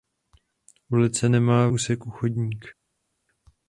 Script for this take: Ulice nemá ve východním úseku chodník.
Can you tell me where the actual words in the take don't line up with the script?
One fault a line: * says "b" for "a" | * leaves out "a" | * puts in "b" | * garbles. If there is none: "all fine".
* leaves out "ve východním"